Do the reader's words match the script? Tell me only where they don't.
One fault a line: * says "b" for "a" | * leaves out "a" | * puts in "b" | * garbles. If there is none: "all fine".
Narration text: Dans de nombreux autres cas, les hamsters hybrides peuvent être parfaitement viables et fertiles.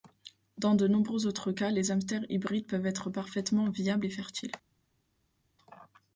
all fine